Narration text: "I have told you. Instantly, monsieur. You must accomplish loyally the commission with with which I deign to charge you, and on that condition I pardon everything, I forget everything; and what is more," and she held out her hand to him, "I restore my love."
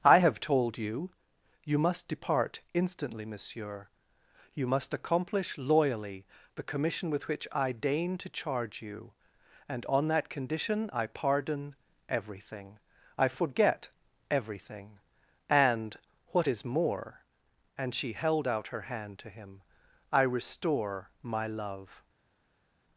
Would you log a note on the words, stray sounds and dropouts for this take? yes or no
yes